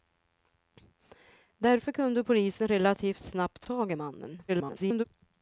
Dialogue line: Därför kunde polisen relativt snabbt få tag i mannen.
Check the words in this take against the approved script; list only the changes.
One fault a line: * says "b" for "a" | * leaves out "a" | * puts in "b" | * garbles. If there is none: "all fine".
* leaves out "få"
* garbles